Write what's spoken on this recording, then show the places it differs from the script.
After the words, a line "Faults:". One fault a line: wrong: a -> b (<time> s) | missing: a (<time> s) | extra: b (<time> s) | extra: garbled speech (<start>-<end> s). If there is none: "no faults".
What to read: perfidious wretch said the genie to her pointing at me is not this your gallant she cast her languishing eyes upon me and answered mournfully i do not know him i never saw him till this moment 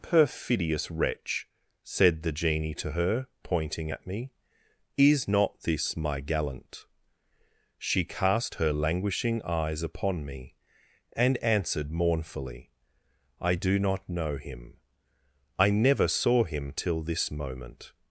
perfidious wretch said the genie to her pointing at me is not this my gallant she cast her languishing eyes upon me and answered mournfully i do not know him i never saw him till this moment
Faults:
wrong: your -> my (6.0 s)